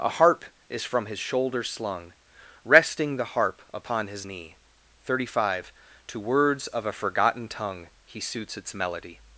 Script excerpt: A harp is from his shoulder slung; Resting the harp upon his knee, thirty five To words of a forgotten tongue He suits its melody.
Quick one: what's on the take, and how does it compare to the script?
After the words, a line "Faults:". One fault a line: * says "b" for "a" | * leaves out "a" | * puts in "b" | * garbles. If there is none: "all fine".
A harp is from his shoulder slung; Resting the harp upon his knee, thirty five To words of a forgotten tongue He suits its melody.
Faults:
all fine